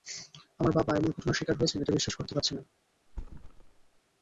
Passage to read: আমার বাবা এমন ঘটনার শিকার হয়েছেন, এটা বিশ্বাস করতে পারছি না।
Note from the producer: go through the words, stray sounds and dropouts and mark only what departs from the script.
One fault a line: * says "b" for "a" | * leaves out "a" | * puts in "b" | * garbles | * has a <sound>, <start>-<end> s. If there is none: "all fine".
* has a thud, 3.1-4.0 s